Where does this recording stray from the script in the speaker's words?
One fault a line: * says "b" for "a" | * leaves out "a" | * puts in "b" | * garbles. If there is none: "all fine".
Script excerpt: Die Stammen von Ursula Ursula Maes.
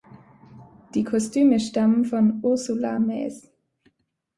* puts in "Kostüme"
* leaves out "Ursula"